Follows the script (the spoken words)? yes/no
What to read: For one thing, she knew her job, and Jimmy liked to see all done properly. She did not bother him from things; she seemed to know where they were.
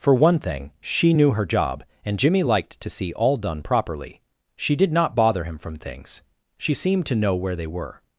yes